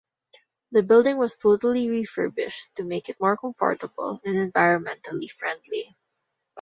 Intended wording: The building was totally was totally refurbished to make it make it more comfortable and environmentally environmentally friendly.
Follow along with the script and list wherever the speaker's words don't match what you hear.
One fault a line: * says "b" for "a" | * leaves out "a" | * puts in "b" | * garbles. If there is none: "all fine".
* leaves out "was totally"
* leaves out "make it"
* leaves out "environmentally"